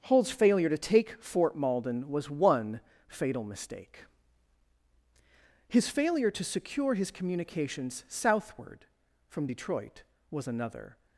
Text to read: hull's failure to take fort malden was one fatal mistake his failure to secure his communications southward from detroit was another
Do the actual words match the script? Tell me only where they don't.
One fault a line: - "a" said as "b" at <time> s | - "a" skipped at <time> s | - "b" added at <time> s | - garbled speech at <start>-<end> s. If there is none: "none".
none